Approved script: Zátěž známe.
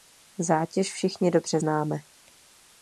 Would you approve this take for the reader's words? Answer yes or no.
no